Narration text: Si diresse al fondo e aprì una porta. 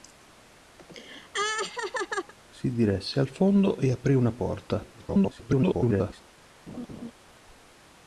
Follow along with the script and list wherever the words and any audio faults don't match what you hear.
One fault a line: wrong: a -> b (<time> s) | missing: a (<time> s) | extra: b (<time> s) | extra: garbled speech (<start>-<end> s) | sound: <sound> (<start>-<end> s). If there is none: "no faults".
sound: laugh (0.8-2.3 s)
extra: garbled speech (4.9-6.2 s)
sound: laugh (6.7-7.1 s)